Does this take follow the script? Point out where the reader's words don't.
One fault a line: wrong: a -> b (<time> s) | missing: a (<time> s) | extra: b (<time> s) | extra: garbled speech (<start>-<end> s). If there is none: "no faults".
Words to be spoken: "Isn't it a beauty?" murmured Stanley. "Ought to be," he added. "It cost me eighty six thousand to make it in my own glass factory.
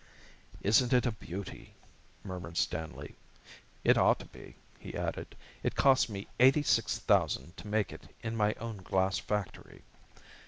extra: It (3.8 s)